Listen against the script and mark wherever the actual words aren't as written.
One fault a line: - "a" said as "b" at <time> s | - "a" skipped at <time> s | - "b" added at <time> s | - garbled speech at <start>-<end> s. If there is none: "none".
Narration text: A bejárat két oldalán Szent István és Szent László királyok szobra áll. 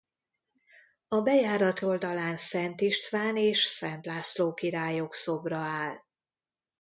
- "két" skipped at 1.8 s